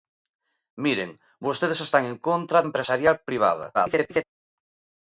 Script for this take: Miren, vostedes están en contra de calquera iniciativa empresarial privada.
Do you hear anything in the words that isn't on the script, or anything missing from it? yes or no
yes